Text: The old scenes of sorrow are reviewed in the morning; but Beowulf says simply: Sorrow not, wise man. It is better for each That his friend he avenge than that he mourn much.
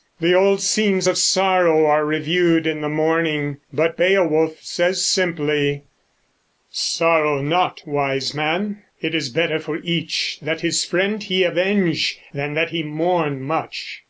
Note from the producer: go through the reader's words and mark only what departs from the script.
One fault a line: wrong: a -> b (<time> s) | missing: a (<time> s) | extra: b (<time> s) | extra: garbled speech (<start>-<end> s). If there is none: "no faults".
no faults